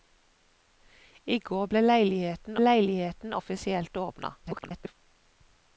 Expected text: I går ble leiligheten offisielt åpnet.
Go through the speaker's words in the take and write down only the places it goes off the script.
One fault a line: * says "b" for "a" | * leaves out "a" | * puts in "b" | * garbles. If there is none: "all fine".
* puts in "leiligheten"
* garbles